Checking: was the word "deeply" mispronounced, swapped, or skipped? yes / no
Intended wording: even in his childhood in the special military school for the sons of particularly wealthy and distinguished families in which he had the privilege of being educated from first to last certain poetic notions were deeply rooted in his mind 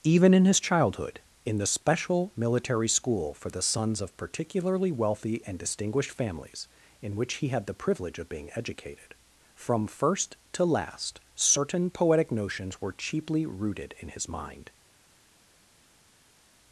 yes